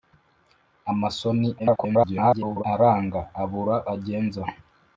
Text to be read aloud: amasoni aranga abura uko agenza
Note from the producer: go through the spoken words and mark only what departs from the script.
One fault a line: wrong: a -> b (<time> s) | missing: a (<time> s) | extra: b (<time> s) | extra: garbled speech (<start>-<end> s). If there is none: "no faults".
extra: garbled speech (1.6-2.6 s)
missing: uko (3.7 s)